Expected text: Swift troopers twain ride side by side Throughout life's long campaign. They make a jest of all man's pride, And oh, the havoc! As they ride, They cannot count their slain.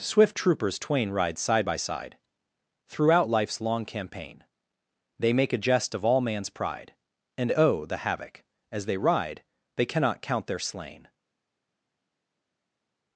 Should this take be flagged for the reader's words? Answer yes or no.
no